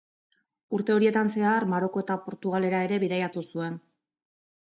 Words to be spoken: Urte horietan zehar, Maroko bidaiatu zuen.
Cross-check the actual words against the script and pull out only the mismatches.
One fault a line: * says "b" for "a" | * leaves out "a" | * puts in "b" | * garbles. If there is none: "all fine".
* puts in "eta Portugalera ere"